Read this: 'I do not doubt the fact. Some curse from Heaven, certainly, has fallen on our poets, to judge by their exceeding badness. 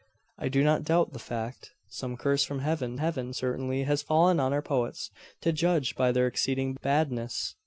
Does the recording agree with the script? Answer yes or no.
no